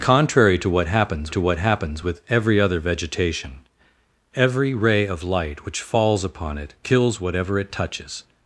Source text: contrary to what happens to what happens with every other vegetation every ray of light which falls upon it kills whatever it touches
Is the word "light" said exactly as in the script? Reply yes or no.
yes